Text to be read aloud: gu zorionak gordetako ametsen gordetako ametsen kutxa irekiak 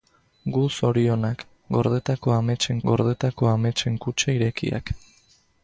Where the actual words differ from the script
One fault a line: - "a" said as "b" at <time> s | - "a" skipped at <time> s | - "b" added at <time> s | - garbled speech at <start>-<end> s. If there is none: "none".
none